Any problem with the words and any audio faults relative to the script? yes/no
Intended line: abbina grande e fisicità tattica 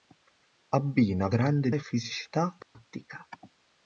yes